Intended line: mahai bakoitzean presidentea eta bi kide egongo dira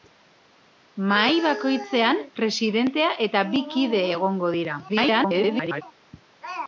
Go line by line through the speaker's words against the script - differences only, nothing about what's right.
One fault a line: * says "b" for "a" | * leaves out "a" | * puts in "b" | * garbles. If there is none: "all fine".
* garbles